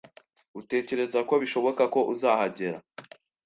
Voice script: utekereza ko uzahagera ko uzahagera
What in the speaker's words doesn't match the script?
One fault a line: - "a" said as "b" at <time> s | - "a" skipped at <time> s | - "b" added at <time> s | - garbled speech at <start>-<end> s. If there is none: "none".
- "uzahagera" said as "bishoboka" at 1.4 s